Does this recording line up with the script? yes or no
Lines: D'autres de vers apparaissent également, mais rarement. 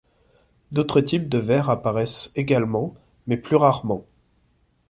no